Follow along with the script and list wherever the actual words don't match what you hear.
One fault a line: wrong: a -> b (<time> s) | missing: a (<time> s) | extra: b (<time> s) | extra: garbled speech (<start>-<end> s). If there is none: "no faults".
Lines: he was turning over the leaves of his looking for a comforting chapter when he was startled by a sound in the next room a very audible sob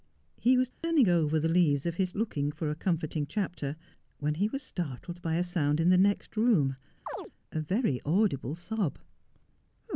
no faults